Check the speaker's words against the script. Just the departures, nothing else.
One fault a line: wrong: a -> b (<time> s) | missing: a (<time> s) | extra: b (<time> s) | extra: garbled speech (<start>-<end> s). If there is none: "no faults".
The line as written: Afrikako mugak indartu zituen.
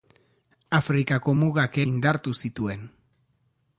no faults